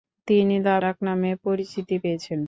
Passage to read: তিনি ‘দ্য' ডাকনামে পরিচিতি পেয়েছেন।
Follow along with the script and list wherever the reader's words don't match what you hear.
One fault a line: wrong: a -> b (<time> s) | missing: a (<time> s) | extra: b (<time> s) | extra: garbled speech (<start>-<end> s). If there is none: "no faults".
no faults